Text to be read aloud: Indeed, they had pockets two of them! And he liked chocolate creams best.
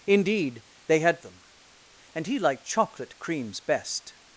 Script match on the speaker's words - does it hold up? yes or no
no